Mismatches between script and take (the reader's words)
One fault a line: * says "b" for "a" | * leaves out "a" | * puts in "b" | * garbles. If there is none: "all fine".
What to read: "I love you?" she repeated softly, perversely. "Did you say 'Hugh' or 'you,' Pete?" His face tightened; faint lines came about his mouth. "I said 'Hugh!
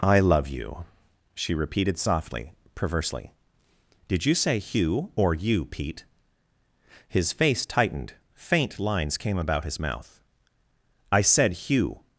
all fine